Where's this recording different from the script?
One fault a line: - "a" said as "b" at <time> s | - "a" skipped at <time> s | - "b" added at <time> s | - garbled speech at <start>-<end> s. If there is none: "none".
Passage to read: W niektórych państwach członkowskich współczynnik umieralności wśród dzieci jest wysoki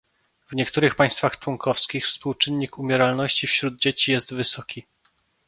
none